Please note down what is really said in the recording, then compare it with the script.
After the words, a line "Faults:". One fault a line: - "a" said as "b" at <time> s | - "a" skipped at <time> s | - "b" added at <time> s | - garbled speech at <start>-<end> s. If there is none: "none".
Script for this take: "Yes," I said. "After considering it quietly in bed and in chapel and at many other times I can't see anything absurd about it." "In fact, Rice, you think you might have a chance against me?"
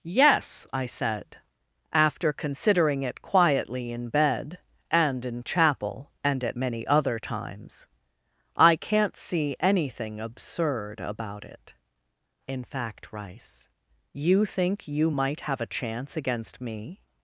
"Yes," I said. "After considering it quietly in bed and in chapel and at many other times I can't see anything absurd about it." "In fact, Rice, you think you might have a chance against me?"
Faults:
none